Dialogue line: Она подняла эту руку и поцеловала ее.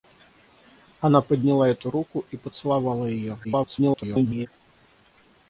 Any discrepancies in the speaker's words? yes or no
yes